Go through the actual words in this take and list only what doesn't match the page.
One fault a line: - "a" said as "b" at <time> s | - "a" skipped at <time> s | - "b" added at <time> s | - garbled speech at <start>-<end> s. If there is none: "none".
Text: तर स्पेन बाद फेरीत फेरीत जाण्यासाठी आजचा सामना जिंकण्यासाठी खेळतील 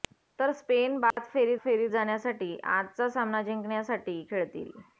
none